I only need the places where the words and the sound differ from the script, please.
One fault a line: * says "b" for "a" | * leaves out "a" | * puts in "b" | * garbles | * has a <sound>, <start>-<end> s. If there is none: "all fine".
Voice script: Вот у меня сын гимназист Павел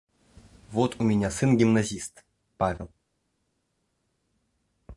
all fine